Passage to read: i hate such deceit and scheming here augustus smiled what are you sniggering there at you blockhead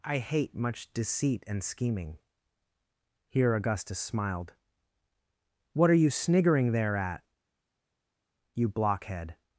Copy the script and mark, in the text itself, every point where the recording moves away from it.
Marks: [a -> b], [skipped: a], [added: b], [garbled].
i hate [such -> much] deceit and scheming here augustus smiled what are you sniggering there at you blockhead